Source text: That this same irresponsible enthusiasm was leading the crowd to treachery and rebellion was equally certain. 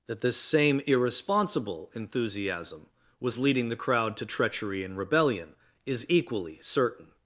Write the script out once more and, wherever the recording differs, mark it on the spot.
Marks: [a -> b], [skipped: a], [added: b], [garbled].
That this same irresponsible enthusiasm was leading the crowd to treachery and rebellion [was -> is] equally certain.